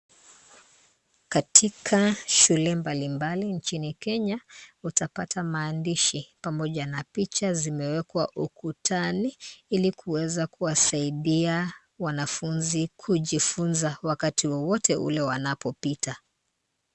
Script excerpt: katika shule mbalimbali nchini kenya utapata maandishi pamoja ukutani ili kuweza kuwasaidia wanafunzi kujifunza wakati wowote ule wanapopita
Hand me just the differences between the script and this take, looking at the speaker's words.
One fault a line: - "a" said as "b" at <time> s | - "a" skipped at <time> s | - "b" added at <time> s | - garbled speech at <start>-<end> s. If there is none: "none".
- "na picha zimewekwa" added at 6.8 s